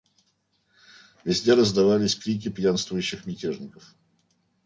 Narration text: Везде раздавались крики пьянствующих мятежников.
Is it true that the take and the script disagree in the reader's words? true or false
false